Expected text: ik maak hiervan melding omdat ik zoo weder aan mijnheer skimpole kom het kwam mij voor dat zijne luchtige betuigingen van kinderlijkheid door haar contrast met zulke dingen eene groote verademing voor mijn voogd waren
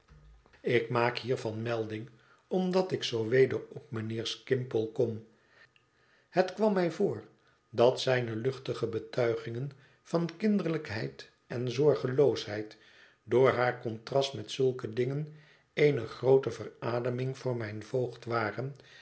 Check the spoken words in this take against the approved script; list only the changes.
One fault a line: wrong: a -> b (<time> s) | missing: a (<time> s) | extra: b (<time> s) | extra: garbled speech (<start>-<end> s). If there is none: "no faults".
wrong: aan -> op (3.7 s)
extra: en zorgeloosheid (11.5 s)